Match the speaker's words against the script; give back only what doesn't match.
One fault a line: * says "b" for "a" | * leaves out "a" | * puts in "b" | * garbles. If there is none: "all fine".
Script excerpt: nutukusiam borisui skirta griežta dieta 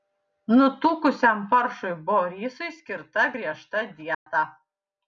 * puts in "paršui"